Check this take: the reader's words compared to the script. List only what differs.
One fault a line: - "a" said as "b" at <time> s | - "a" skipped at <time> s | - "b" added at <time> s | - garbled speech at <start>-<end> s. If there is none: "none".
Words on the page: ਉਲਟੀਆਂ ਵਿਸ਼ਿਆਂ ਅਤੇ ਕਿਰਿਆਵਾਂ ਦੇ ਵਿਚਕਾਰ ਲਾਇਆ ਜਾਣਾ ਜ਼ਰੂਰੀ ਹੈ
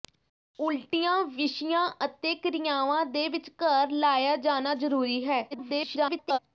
- garbled speech at 5.5-6.4 s